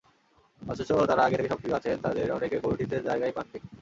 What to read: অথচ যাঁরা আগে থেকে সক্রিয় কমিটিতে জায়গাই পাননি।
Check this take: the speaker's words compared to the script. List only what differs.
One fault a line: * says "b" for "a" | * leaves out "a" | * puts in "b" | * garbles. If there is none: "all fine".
* puts in "আছেন তাঁদের অনেকে"